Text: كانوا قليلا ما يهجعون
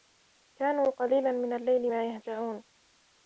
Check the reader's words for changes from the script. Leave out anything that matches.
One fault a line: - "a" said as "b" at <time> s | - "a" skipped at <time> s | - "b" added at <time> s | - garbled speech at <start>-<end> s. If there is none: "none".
- "من الليل" added at 1.3 s